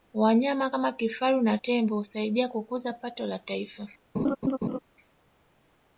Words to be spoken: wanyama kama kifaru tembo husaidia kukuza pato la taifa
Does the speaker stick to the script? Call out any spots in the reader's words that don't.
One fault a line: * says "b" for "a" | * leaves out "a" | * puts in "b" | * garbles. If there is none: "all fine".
* puts in "na"